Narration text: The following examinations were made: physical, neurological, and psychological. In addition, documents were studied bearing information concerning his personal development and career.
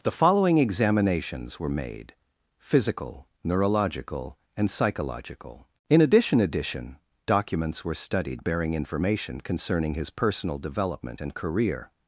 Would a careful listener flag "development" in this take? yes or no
no